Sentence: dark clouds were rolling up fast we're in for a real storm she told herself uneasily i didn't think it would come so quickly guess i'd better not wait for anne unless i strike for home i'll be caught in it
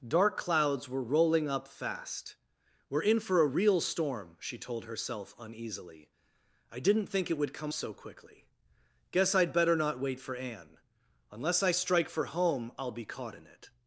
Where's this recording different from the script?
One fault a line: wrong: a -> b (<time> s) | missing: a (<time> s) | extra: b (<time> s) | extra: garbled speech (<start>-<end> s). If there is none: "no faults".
no faults